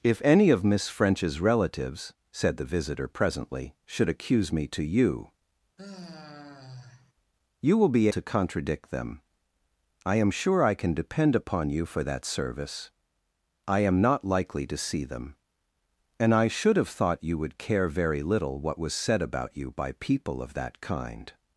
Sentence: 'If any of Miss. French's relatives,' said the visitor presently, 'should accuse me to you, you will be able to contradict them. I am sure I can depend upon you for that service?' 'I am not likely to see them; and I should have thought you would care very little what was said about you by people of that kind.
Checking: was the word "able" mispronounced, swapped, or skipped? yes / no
yes